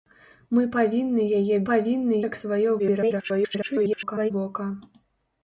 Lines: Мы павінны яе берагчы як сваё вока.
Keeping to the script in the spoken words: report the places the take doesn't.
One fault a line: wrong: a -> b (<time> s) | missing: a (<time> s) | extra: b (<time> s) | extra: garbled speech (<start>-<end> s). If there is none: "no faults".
wrong: берагчы -> павінны (1.7 s)
extra: garbled speech (2.8-4.3 s)